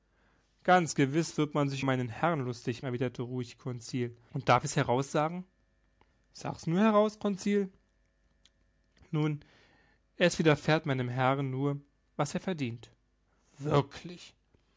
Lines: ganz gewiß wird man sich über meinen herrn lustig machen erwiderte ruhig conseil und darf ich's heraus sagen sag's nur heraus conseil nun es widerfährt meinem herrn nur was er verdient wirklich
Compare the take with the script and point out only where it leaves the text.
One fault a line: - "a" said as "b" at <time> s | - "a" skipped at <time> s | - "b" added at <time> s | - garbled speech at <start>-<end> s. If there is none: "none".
- "über" skipped at 1.8 s
- "machen" skipped at 2.8 s